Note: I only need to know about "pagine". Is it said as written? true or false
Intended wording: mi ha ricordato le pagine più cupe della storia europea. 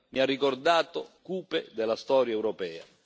false